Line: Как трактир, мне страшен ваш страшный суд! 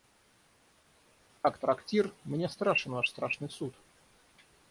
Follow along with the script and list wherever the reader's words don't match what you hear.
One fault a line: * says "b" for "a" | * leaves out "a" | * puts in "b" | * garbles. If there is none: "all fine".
all fine